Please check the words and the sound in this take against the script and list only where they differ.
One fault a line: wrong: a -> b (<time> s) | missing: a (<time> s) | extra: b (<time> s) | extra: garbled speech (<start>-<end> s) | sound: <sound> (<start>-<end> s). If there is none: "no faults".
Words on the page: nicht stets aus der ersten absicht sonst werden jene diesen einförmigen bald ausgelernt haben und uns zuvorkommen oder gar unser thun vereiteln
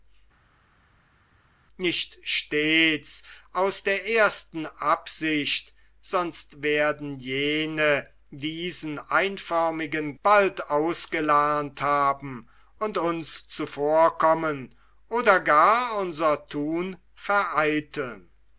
no faults